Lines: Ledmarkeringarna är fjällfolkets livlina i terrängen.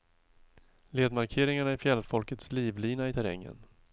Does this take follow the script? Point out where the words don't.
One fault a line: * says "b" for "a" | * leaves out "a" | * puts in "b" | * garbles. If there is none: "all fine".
all fine